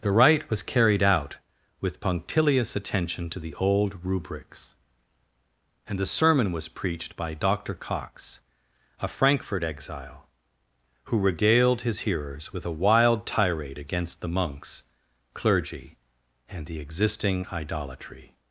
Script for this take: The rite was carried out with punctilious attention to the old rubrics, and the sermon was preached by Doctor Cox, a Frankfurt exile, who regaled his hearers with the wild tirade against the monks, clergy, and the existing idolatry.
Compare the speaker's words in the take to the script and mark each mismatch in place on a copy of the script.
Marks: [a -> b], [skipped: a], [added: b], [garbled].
The rite was carried out with punctilious attention to the old rubrics, and the sermon was preached by Doctor Cox, a Frankfurt exile, who regaled his hearers with [the -> a] wild tirade against the monks, clergy, and the existing idolatry.